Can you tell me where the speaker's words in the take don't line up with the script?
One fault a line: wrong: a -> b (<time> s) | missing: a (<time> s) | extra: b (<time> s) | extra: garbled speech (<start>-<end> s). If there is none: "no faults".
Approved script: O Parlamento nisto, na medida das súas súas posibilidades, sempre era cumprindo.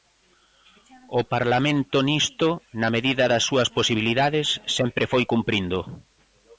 missing: súas (3.7 s)
wrong: era -> foi (5.1 s)